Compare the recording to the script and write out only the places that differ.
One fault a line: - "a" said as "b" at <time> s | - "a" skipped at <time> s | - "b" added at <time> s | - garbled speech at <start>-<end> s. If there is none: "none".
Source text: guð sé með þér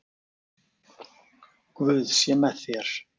none